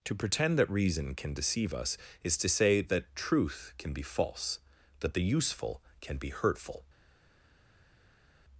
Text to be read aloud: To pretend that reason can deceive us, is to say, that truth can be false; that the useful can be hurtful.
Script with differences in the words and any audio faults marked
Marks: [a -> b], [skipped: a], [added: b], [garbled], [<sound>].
To pretend that reason can deceive us, is to say, that truth can be false; that the useful can be hurtful.